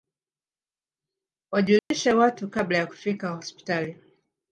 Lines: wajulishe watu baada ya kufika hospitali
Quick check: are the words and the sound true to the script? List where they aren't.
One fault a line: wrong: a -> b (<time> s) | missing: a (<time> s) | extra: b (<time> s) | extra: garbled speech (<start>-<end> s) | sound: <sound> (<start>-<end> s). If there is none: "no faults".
sound: dropout (1.8-1.9 s)
wrong: baada -> kabla (2.5 s)